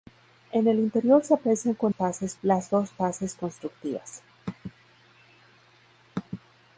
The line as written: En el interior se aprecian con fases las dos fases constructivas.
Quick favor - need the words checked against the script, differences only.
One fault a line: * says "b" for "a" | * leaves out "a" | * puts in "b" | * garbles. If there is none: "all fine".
all fine